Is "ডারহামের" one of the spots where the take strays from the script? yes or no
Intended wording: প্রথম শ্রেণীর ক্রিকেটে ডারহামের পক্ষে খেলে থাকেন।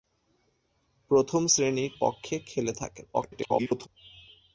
yes